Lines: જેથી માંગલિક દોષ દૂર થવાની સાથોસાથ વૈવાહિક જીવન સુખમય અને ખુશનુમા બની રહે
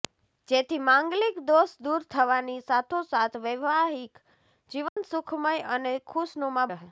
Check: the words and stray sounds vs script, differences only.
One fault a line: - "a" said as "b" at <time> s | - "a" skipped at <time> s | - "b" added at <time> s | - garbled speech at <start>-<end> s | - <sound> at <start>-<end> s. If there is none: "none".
- dropout at 4.9-5.0 s
- "બની" skipped at 6.7 s